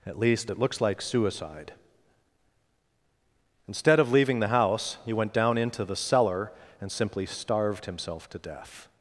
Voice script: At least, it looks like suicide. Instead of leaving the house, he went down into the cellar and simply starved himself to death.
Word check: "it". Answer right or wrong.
right